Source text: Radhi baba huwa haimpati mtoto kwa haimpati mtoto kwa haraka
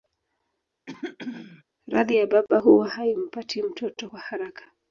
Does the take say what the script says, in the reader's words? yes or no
no